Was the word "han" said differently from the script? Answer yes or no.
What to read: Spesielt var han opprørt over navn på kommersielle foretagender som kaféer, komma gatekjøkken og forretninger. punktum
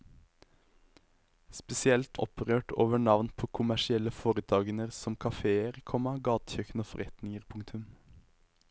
yes